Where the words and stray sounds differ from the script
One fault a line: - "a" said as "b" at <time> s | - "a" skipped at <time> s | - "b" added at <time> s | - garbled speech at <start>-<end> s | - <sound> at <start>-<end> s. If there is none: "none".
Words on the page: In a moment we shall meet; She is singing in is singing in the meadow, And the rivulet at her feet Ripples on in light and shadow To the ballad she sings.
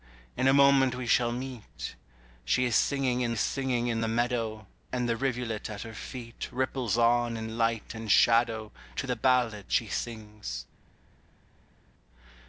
none